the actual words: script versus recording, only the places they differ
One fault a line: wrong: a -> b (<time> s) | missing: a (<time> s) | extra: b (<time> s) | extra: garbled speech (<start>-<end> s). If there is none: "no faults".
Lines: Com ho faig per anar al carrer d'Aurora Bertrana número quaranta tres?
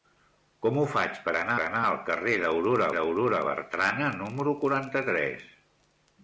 extra: anar (1.6 s)
extra: d'Aurora (3.0 s)